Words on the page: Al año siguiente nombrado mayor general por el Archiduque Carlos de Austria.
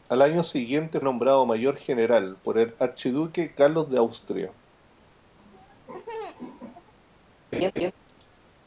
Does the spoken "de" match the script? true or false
true